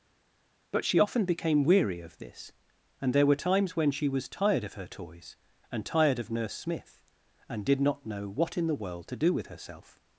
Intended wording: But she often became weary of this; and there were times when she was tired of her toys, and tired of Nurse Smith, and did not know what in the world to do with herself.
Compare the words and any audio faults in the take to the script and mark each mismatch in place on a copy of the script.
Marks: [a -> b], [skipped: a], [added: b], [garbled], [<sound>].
But she often became weary of this; and there were times when she was tired of her toys, and tired of Nurse Smith, and did not know what in the world to do with herself.